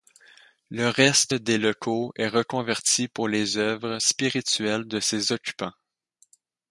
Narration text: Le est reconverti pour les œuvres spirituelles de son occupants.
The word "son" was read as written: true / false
false